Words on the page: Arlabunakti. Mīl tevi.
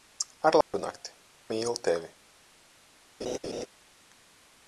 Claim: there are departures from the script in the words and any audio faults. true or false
true